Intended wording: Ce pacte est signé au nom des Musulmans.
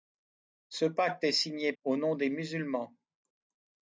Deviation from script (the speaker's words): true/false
false